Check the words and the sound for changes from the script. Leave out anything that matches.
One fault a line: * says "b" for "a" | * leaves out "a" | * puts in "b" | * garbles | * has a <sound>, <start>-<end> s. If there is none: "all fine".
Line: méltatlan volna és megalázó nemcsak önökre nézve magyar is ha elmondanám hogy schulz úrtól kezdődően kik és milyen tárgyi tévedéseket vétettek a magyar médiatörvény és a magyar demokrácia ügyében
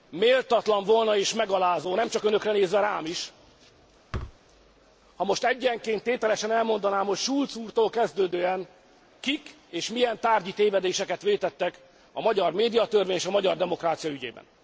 * says "rám" for "magyar"
* has a thud, 4.1-4.4 s
* puts in "most egyenként tételesen"